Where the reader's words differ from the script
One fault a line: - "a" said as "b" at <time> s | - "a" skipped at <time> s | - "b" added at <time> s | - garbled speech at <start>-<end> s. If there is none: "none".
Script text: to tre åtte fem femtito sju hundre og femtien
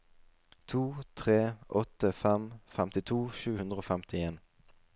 none